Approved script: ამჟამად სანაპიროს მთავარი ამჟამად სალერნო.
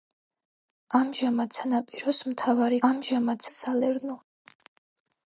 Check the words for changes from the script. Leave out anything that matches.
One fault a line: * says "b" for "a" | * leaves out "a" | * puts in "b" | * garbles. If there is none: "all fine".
all fine